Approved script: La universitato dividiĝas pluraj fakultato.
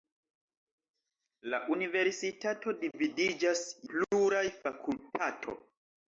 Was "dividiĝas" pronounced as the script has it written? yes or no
yes